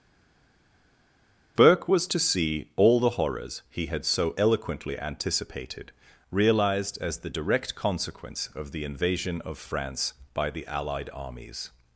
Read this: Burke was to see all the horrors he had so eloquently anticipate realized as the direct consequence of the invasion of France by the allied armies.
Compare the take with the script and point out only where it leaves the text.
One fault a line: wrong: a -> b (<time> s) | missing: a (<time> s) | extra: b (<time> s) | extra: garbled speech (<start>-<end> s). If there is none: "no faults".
wrong: anticipate -> anticipated (5.0 s)